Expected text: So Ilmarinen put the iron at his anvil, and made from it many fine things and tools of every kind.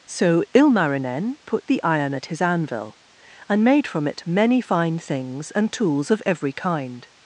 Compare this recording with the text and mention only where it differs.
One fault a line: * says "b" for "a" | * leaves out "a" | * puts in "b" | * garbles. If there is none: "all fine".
all fine